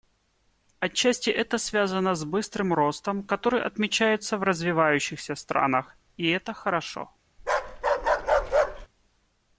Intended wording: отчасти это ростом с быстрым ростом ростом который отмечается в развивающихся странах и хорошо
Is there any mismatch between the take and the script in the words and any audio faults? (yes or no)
yes